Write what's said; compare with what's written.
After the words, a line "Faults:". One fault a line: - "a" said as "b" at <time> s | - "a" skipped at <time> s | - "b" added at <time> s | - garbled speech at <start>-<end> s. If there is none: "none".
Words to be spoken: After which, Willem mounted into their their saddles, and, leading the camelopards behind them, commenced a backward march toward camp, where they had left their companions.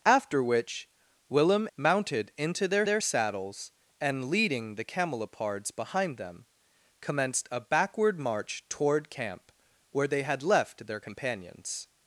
After which, Willem mounted into their their saddles, and, leading the camelopards behind them, commenced a backward march toward camp, where they had left their companions.
Faults:
none